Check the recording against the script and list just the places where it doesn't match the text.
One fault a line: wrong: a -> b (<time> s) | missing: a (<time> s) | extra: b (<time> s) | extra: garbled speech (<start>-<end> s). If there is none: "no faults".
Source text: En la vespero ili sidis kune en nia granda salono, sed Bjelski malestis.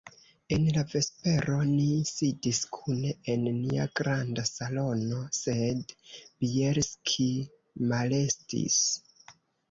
wrong: ili -> ni (1.7 s)